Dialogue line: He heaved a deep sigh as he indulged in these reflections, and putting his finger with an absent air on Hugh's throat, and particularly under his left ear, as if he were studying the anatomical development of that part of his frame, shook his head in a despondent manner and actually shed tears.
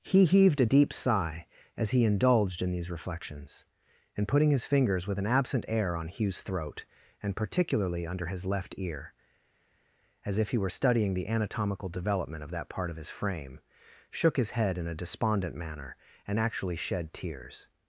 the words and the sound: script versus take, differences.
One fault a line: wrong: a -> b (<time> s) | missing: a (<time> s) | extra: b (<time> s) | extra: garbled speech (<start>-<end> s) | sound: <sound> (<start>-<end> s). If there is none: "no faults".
wrong: finger -> fingers (4.6 s)